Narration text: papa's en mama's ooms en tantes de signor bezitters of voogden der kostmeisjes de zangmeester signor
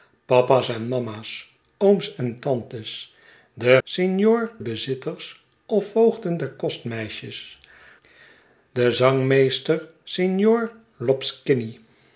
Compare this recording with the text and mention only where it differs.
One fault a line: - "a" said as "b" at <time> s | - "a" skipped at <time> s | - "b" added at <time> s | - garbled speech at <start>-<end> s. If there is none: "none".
none